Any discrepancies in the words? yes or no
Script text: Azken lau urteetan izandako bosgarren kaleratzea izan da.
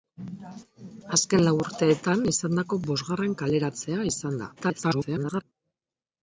yes